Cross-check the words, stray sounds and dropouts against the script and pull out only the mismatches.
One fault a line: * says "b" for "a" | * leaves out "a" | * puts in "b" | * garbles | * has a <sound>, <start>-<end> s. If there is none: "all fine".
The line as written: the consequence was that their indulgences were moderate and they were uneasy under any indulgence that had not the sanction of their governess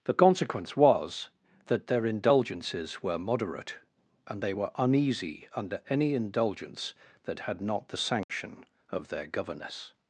* has a dropout, 8.2-8.3 s